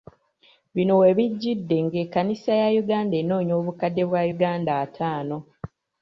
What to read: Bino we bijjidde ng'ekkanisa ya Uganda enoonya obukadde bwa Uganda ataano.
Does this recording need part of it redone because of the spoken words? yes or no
no